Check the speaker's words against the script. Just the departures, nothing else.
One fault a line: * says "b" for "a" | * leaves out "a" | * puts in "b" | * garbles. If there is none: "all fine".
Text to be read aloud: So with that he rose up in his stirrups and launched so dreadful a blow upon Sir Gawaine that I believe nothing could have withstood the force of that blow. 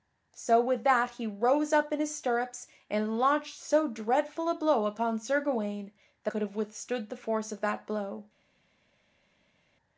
* leaves out "I believe nothing"